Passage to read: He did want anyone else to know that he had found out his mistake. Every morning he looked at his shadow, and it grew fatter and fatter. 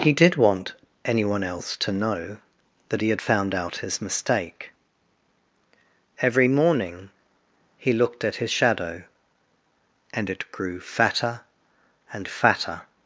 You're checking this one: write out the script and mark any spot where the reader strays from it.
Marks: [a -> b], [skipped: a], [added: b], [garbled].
He did want anyone else to know that he had found out his mistake. Every morning he looked at his shadow, and it grew fatter and fatter.